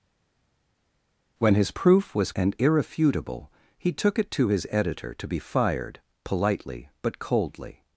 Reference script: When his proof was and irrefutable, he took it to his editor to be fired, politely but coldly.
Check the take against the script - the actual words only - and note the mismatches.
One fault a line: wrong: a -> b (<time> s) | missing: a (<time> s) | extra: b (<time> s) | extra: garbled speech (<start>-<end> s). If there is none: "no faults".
no faults